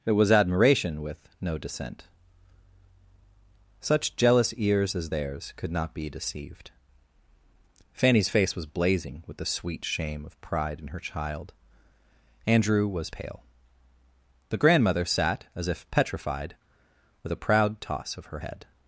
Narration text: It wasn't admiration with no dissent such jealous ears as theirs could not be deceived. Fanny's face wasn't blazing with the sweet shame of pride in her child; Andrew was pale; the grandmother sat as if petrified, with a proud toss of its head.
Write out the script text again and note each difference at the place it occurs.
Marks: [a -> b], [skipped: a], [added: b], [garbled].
It [wasn't -> was] admiration with no dissent such jealous ears as theirs could not be deceived. Fanny's face [wasn't -> was] blazing with the sweet shame of pride in her child; Andrew was pale; the grandmother sat as if petrified, with a proud toss of [its -> her] head.